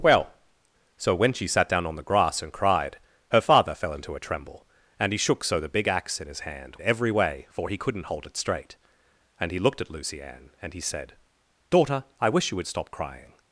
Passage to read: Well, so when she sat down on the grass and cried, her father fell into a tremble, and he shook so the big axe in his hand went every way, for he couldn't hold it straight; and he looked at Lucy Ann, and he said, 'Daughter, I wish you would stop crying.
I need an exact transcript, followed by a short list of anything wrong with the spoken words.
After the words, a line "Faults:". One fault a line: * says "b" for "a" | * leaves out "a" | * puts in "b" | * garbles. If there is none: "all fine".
Well, so when she sat down on the grass and cried, her father fell into a tremble, and he shook so the big axe in his hand every way, for he couldn't hold it straight; and he looked at Lucy Ann, and he said, 'Daughter, I wish you would stop crying.
Faults:
* leaves out "went"